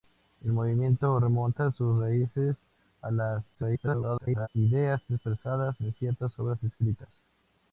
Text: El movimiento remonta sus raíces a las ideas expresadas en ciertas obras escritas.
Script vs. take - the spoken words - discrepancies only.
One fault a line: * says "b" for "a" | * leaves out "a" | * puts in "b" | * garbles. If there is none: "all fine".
* garbles